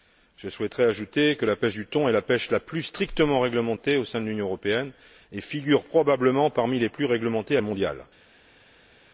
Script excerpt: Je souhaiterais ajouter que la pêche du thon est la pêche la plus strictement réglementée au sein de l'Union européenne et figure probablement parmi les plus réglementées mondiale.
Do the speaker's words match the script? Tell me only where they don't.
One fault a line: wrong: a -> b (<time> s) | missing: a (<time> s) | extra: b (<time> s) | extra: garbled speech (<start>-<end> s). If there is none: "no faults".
no faults